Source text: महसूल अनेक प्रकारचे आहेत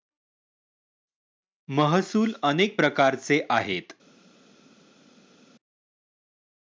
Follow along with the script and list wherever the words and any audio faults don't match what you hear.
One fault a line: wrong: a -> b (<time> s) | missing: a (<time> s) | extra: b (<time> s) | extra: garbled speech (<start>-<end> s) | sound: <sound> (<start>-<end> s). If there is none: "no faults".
no faults